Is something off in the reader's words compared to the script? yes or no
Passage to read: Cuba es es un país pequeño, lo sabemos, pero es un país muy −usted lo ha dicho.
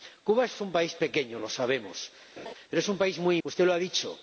no